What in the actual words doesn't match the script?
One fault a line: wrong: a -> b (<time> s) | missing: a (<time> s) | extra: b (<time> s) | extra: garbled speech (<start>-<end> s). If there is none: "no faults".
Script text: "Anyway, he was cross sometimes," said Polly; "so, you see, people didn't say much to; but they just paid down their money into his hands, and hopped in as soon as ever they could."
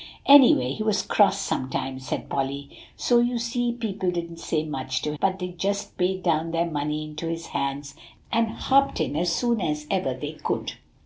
no faults